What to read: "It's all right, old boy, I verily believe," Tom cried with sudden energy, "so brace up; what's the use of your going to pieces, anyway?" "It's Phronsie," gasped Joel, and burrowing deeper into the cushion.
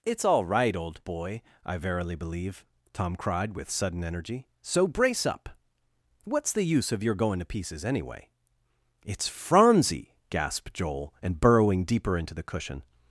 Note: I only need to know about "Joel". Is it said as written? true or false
true